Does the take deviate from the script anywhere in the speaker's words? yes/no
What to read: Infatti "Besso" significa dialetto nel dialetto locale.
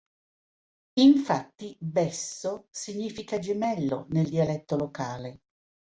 yes